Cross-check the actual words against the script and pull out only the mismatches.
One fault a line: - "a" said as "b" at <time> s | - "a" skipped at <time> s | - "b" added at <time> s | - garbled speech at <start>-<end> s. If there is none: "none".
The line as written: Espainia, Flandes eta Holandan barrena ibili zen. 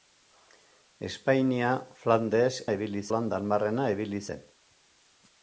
- "eta" said as "ibili" at 2.7 s